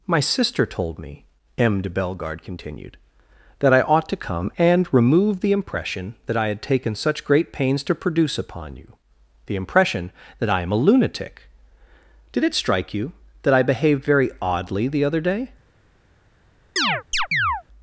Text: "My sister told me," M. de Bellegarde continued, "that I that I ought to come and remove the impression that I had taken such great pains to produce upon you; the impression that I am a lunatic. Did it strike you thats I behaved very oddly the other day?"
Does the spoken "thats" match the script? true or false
false